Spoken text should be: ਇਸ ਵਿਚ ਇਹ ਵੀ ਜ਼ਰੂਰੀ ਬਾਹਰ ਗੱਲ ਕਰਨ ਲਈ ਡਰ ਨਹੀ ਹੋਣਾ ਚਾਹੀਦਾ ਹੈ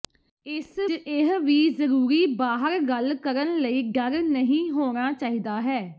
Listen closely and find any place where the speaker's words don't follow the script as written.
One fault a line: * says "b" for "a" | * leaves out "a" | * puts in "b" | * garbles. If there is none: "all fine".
* leaves out "ਵਿਚ"